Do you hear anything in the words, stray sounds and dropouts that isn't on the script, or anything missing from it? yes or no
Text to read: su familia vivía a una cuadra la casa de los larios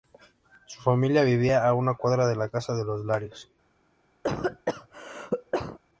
yes